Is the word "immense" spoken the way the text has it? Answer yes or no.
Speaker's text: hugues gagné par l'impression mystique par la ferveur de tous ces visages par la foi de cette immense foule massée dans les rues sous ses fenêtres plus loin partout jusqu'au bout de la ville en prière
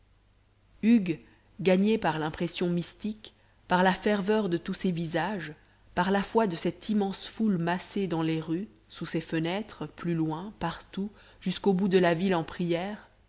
yes